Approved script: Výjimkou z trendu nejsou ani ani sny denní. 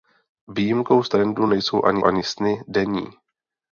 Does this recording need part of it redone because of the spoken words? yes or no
no